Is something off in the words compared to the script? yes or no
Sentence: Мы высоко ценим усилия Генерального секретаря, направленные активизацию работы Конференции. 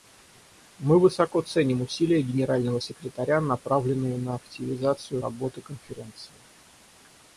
yes